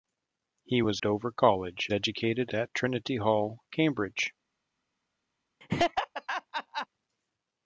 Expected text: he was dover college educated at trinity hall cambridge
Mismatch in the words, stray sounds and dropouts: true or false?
true